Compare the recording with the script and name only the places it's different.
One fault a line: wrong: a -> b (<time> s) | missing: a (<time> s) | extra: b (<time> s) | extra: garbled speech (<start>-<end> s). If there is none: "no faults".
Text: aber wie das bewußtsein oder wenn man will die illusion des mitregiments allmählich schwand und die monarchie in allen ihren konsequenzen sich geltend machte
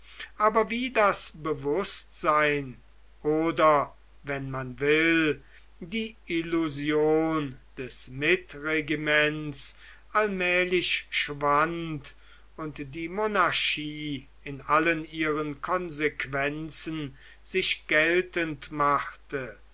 no faults